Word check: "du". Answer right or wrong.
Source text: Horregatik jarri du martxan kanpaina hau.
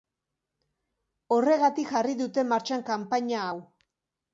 wrong